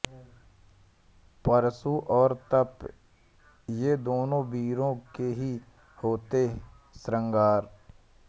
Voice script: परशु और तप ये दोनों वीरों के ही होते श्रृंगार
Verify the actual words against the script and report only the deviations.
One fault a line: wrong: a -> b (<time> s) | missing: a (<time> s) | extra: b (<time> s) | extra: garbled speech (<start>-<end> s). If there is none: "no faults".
no faults